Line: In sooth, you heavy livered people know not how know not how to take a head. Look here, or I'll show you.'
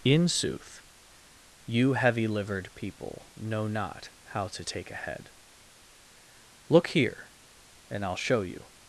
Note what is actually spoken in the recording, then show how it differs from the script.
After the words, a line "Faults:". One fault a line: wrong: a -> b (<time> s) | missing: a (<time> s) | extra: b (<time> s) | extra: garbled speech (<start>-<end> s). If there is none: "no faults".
In sooth, you heavy livered people know not how to take a head. Look here, and I'll show you.'
Faults:
missing: know not how (4.5 s)
wrong: or -> and (7.9 s)